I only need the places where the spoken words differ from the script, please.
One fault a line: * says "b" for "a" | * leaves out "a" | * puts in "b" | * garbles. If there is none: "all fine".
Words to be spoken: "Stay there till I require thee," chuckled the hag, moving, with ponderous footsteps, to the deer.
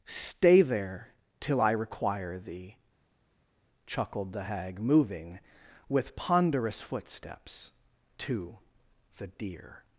all fine